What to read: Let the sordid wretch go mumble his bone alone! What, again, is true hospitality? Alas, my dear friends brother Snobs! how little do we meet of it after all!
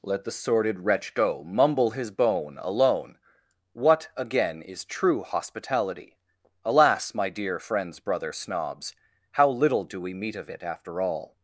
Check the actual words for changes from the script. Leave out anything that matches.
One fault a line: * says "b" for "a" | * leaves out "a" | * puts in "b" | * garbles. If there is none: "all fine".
all fine